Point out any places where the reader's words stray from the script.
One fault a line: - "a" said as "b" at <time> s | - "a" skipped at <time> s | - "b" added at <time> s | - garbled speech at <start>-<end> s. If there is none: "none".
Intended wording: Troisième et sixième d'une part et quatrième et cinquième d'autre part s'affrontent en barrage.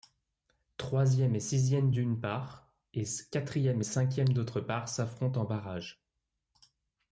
none